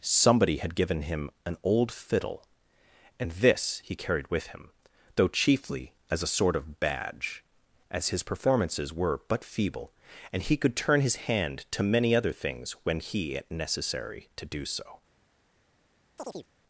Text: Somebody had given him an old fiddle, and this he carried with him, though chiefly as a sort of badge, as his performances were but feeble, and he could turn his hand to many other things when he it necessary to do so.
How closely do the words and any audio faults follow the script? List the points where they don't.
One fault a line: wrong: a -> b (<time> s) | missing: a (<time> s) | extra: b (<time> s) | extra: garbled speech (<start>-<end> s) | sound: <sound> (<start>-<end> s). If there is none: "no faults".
sound: chirp (16.2-16.5 s)